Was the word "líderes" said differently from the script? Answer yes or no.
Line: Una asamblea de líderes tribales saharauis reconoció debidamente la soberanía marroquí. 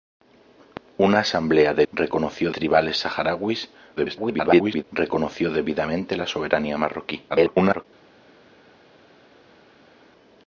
yes